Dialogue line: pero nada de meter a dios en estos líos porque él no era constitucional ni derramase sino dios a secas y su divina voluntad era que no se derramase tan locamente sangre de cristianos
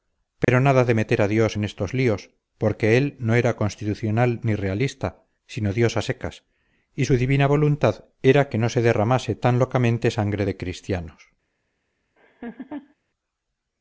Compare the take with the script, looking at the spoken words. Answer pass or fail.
fail